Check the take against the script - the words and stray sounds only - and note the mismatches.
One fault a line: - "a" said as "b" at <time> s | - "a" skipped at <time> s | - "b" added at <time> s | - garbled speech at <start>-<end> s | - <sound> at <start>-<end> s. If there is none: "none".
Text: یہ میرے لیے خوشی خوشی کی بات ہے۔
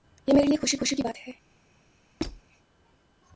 - squeak at 2.2-2.4 s